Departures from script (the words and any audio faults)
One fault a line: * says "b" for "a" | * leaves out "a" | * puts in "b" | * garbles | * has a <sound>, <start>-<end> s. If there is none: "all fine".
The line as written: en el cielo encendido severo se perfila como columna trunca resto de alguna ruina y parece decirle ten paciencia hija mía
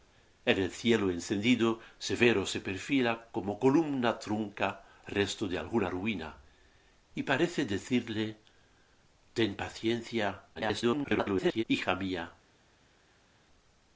* garbles